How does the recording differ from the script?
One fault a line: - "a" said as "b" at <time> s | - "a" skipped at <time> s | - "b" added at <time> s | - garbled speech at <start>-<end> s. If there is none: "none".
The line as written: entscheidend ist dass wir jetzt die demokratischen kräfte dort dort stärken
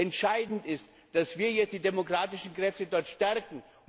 - "dort" skipped at 3.1 s